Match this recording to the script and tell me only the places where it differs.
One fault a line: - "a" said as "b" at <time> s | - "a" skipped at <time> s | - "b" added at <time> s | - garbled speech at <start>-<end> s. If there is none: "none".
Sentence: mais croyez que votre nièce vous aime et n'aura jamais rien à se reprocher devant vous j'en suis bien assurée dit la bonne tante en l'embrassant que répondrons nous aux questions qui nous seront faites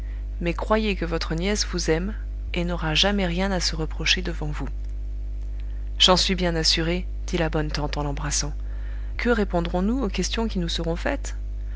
none